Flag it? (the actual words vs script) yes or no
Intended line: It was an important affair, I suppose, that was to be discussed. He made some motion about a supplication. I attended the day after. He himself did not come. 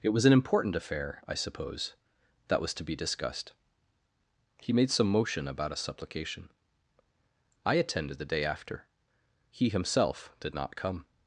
no